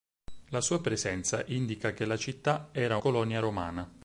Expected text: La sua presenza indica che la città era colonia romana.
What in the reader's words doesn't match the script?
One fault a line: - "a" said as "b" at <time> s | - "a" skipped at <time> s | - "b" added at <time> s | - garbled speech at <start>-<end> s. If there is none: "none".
none